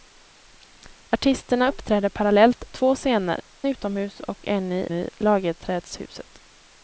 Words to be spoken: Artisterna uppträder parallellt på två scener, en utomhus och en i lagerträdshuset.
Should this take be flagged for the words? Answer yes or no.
yes